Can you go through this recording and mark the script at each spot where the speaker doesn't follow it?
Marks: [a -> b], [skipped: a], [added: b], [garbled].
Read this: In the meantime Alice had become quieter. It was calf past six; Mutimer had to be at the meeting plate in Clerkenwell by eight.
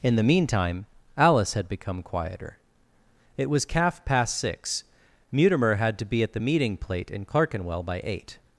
In the meantime Alice had become quieter. It was calf past six; Mutimer had to be at the meeting plate in Clerkenwell by eight.